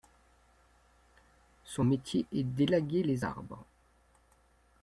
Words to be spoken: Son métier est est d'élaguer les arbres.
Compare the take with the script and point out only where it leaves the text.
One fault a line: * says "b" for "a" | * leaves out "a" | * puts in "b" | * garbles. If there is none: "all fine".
* leaves out "est"